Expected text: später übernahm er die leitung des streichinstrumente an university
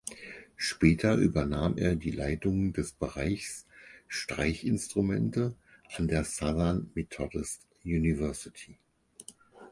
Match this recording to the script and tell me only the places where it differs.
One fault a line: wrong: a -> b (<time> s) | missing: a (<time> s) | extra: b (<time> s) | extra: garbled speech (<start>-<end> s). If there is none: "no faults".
extra: bereichs (2.9 s)
extra: der southern methodist (6.1 s)